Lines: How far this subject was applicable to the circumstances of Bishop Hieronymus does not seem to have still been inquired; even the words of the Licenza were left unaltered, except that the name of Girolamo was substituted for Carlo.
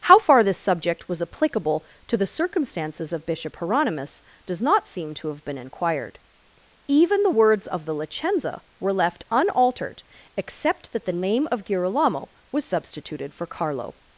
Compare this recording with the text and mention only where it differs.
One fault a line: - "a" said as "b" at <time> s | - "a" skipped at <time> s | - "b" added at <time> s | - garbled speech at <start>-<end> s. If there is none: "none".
- "still" skipped at 5.5 s